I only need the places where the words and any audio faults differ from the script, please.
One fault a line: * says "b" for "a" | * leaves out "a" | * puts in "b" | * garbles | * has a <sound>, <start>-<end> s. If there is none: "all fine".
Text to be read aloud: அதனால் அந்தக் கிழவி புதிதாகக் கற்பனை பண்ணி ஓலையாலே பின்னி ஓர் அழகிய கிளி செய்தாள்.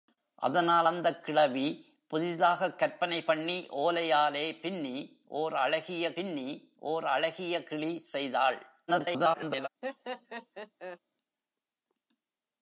* puts in "பின்னி ஓர் அழகிய"
* garbles
* has a laugh, 9.8-11.0 s